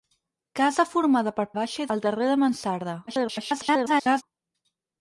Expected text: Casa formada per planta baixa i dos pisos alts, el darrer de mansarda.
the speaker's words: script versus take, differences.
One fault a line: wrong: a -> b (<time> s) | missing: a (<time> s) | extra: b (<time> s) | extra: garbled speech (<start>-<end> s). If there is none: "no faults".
missing: planta (1.4 s)
missing: dos pisos alts (1.9 s)
extra: garbled speech (3.1-4.2 s)